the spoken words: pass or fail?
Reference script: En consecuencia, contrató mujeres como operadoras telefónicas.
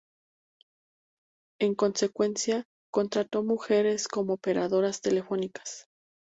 pass